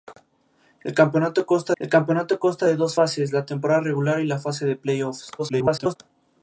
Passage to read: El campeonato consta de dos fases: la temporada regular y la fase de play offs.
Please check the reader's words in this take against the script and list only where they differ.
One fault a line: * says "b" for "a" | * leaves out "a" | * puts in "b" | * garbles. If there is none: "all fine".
* puts in "el campeonato consta"
* garbles